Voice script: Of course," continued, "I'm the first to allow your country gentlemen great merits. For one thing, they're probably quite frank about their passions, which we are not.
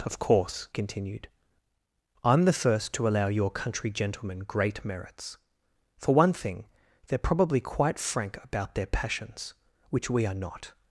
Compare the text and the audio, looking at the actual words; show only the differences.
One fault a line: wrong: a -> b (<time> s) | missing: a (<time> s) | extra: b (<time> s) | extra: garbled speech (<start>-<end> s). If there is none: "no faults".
no faults